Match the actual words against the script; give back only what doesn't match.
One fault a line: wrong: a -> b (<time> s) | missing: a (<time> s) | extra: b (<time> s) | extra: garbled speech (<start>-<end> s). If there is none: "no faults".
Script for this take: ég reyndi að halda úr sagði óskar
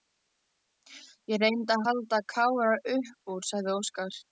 extra: kára upp (2.4 s)